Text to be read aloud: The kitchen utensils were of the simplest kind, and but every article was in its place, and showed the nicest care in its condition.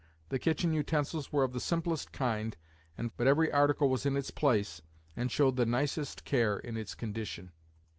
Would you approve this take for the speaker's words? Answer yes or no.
yes